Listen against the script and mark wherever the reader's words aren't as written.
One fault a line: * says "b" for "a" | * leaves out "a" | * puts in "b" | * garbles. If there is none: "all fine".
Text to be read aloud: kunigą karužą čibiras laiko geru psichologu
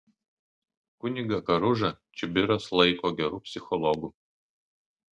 all fine